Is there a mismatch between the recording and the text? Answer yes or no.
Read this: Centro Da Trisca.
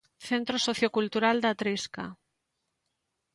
yes